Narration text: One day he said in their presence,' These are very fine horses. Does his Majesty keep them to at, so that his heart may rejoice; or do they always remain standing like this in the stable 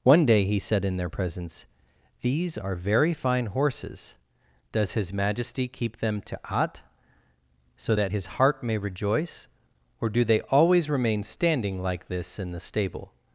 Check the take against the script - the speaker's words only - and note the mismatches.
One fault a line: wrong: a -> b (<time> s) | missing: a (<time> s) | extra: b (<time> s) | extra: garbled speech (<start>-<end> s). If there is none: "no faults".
no faults